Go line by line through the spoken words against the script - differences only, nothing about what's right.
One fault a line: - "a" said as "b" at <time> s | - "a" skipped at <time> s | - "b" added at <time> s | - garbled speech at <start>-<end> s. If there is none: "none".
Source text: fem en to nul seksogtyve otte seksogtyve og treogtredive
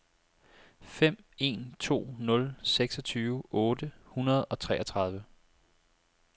- "seksogtyve" said as "hundrede" at 4.0 s